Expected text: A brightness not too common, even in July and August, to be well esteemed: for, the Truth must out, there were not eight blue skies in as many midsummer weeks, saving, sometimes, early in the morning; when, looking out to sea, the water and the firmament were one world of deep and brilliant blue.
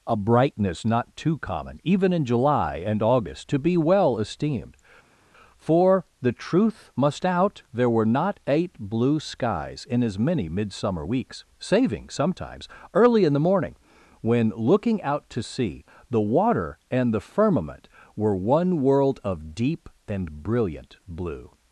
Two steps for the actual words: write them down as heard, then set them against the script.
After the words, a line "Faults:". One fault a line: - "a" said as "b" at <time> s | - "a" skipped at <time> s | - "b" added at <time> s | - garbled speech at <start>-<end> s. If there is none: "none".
A brightness not too common, even in July and August, to be well esteemed: for, the Truth must out, there were not eight blue skies in as many midsummer weeks, saving, sometimes, early in the morning; when, looking out to sea, the water and the firmament were one world of deep and brilliant blue.
Faults:
none